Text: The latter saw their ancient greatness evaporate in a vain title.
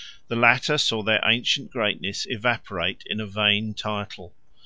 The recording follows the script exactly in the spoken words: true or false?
true